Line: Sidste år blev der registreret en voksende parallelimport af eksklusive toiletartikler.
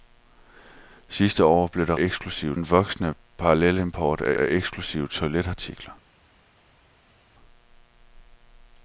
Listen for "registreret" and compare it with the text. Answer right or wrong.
wrong